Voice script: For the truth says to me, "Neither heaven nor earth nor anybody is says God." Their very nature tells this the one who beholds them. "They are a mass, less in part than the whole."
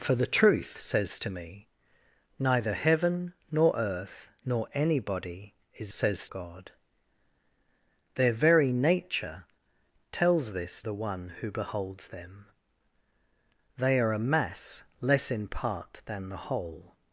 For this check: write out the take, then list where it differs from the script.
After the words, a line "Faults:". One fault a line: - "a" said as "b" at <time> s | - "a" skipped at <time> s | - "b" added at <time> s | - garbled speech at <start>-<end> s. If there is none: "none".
For the truth says to me, "Neither heaven nor earth nor anybody is says God." Their very nature tells this the one who beholds them. "They are a mass, less in part than the whole."
Faults:
none